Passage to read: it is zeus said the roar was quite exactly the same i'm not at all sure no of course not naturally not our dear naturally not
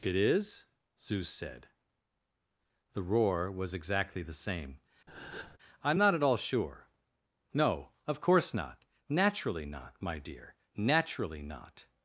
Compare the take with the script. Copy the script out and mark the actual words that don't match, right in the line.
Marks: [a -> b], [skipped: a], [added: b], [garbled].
it is zeus said the roar was [skipped: quite] exactly the same i'm not at all sure no of course not naturally not [our -> my] dear naturally not